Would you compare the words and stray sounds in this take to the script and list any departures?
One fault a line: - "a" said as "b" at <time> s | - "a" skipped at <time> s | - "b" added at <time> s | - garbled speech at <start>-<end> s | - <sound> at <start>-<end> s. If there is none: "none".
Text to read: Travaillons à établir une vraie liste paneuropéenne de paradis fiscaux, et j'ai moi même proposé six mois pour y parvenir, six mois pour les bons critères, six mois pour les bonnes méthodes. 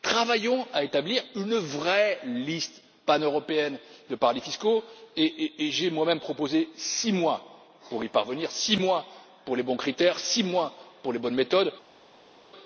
none